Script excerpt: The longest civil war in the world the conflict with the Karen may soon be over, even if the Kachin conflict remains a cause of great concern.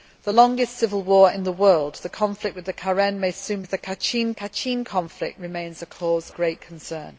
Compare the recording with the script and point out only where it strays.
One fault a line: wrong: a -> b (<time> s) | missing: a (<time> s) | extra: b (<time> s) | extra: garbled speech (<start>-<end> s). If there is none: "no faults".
missing: be over even (3.6 s)
extra: Kachin (4.3 s)
missing: of (6.3 s)